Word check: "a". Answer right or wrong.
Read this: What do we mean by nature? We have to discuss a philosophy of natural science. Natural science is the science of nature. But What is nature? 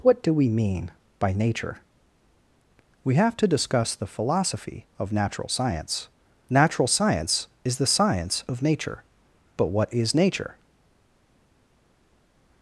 wrong